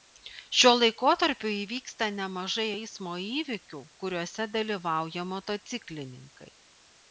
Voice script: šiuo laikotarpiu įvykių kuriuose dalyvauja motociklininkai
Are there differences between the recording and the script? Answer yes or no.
yes